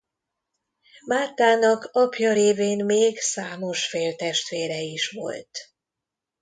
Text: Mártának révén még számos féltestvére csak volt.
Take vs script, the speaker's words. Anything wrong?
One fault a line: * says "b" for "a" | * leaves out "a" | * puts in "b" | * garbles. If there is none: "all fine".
* puts in "apja"
* says "is" for "csak"